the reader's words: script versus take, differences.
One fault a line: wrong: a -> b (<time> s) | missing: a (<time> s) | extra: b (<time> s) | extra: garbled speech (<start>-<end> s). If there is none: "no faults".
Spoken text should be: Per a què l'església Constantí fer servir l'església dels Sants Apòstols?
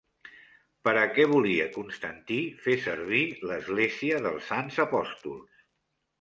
wrong: l'església -> volia (1.3 s)